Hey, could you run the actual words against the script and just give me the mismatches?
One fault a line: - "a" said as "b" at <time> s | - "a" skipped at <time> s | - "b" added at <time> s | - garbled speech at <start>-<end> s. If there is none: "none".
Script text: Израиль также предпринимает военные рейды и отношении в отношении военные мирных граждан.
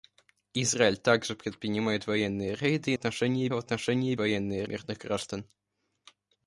none